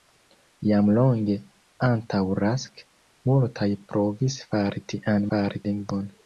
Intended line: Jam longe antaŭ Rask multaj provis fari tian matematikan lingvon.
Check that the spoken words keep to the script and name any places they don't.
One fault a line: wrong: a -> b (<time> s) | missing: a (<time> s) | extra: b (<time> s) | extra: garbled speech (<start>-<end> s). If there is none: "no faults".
wrong: matematikan -> fari (5.3 s)